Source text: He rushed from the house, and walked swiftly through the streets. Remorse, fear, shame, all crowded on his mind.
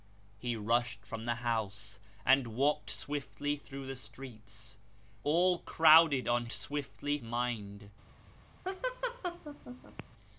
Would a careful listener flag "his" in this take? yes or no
yes